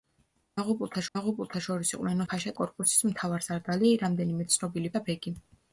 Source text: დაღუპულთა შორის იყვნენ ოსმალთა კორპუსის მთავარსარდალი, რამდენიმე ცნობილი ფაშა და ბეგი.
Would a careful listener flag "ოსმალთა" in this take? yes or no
yes